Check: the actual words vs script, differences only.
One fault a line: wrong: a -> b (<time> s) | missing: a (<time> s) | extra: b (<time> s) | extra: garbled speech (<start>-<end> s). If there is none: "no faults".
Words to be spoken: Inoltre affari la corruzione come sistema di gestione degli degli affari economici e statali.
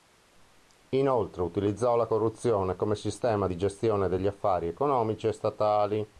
wrong: affari -> utilizzò (1.4 s)
missing: degli (4.3 s)